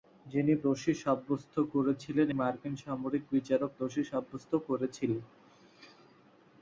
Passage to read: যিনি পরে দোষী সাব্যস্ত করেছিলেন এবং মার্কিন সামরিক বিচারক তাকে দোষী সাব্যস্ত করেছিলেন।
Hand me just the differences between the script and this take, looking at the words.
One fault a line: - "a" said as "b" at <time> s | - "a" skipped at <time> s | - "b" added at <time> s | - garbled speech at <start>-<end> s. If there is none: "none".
- "পরে" skipped at 0.5 s
- "এবং" skipped at 2.3 s
- "তাকে" skipped at 3.7 s